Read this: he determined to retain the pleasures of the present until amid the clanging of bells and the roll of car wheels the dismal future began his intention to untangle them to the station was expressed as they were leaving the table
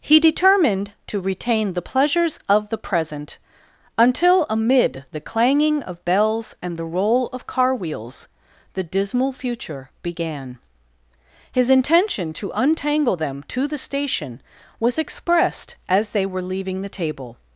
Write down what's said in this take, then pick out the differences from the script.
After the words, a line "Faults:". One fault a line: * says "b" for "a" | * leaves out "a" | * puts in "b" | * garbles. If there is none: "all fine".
he determined to retain the pleasures of the present until amid the clanging of bells and the roll of car wheels the dismal future began his intention to untangle them to the station was expressed as they were leaving the table
Faults:
all fine